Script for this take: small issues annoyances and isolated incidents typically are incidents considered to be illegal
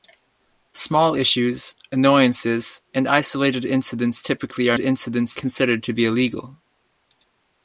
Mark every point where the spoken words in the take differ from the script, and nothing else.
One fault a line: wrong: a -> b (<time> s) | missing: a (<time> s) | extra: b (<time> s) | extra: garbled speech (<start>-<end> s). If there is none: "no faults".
no faults